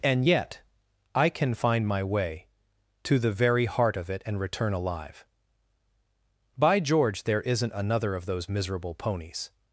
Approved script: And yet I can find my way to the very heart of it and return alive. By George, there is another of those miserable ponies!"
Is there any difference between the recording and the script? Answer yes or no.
yes